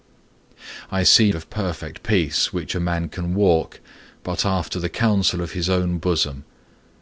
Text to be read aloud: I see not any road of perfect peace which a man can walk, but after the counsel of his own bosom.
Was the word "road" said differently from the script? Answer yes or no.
yes